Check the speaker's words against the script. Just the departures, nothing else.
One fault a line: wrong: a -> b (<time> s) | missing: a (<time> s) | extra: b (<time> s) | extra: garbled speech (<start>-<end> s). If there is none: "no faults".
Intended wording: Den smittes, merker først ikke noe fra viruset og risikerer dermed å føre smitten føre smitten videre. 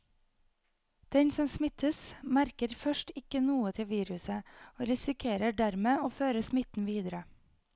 extra: som (1.3 s)
wrong: fra -> til (3.8 s)
missing: føre smitten (6.9 s)